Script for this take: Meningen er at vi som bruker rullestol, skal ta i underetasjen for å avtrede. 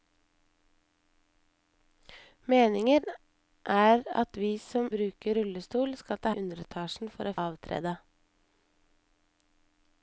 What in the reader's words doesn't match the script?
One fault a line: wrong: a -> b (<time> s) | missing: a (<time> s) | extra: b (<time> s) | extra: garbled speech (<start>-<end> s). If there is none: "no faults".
no faults